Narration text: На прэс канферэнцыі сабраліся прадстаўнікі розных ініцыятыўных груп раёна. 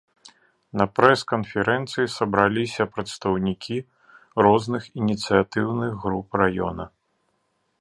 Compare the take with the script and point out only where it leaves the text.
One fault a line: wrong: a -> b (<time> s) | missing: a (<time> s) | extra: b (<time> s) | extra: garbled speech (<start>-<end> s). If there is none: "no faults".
no faults